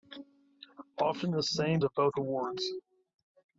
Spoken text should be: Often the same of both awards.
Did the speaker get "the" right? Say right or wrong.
right